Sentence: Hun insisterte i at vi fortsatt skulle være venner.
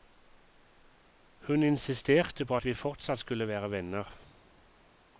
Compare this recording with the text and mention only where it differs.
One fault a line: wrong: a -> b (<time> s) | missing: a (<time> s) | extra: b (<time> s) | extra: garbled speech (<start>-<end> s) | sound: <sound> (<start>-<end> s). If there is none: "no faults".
wrong: i -> på (2.4 s)